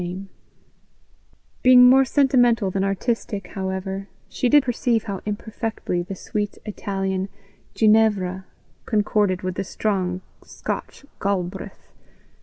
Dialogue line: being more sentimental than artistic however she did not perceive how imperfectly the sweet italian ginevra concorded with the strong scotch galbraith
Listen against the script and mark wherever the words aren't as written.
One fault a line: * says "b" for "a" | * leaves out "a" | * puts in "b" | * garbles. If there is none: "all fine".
* leaves out "not"